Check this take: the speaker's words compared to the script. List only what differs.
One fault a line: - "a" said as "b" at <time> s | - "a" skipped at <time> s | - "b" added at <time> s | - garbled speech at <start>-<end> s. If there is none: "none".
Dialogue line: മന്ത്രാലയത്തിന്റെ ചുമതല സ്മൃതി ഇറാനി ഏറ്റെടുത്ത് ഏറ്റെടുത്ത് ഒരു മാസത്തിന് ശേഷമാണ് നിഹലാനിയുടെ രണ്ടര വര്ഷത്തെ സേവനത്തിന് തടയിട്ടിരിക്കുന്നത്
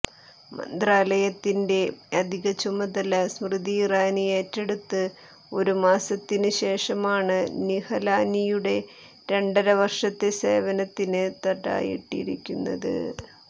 - "അധിക" added at 2.2 s
- "ഏറ്റെടുത്ത്" skipped at 5.0 s